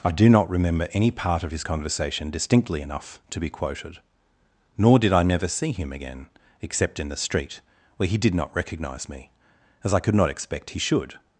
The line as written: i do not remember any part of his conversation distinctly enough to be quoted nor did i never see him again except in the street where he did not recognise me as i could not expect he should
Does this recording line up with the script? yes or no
yes